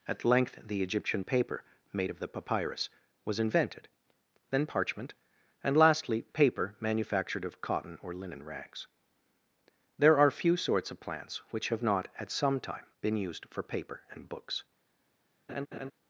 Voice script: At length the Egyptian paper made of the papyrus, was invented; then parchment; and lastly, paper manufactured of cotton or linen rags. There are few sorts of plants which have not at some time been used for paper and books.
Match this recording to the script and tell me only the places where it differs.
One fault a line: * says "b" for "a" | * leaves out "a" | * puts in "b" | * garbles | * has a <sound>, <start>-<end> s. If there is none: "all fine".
* has a laugh, 15.5-15.9 s